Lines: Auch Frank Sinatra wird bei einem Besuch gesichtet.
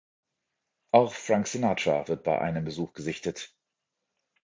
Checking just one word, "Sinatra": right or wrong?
right